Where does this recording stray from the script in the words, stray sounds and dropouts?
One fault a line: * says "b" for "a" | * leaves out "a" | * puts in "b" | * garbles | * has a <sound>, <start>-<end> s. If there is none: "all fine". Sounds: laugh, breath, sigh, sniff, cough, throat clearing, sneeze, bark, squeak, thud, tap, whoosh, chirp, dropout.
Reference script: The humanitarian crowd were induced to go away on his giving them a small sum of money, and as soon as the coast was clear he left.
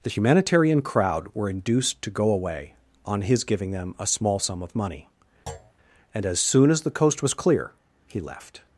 * has a thud, 5.5-5.7 s